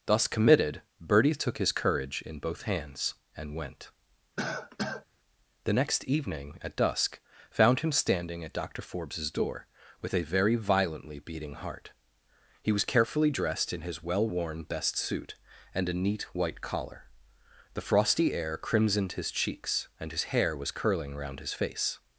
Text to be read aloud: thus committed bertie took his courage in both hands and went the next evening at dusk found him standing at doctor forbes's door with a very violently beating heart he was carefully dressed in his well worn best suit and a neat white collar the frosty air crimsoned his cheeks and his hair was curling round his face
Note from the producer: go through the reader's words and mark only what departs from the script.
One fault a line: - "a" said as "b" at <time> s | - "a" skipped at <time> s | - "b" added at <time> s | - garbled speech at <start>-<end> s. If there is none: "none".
none